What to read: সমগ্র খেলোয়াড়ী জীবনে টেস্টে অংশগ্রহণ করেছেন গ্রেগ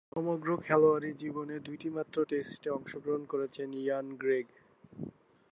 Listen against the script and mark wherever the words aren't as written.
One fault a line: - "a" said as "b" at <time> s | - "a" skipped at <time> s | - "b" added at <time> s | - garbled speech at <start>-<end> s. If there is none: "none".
- "দুইটিমাত্র" added at 1.6 s
- "ইয়ান" added at 3.8 s